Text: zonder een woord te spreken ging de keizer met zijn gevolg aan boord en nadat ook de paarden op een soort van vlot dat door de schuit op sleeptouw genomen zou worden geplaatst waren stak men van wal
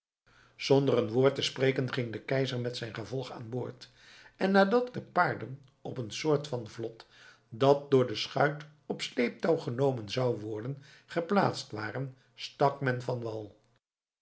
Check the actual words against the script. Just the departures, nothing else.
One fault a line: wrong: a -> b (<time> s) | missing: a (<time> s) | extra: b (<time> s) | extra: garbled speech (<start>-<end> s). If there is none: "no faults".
missing: ook (5.0 s)